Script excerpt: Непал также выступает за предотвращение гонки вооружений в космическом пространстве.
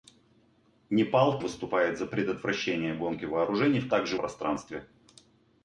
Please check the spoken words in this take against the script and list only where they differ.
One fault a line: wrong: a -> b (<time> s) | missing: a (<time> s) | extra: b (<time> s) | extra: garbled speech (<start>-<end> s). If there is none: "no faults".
missing: также (1.4 s)
wrong: космическом -> также (3.9 s)